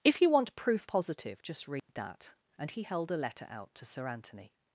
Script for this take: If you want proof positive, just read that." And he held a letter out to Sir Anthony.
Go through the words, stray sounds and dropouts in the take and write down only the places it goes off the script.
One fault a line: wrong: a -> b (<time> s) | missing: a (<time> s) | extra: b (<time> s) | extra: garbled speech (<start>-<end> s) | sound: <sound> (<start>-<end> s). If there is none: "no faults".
sound: dropout (1.8-1.9 s)